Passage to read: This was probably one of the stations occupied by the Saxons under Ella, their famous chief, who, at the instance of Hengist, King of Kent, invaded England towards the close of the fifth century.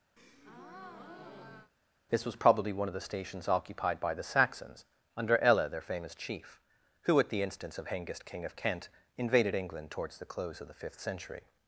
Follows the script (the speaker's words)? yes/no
yes